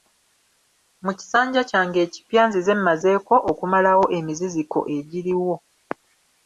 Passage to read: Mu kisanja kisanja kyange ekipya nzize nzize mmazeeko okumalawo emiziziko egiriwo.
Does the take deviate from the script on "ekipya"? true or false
false